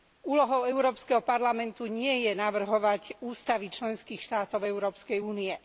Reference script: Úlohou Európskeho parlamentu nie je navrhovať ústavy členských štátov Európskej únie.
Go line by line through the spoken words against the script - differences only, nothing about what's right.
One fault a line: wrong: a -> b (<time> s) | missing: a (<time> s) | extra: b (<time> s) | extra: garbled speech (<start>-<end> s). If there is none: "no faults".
no faults